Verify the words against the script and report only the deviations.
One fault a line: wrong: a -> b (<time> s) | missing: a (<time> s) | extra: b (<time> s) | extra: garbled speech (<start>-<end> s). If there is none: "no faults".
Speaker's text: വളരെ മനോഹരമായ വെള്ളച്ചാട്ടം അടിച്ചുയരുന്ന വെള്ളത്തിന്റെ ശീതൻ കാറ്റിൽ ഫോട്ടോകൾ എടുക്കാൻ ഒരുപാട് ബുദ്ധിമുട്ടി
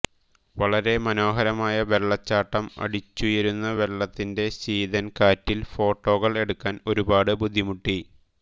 no faults